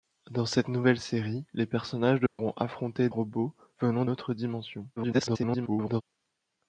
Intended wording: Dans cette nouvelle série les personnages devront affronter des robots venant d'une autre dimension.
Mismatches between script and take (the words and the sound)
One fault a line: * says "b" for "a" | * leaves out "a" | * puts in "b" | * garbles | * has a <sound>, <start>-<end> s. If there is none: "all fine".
* has a dropout, 2.3-2.4 s
* leaves out "des"
* leaves out "d'une"
* garbles